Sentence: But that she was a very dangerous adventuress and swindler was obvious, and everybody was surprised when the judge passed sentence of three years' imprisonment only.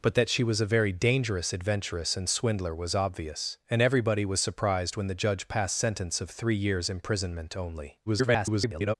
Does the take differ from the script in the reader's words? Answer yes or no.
yes